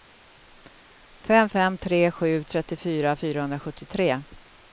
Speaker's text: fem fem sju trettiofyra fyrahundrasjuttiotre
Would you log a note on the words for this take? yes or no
yes